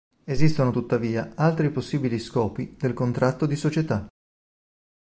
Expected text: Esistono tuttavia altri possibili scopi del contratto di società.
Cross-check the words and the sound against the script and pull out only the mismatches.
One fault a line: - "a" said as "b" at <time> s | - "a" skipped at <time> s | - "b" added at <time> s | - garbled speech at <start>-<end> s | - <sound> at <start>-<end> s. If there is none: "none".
none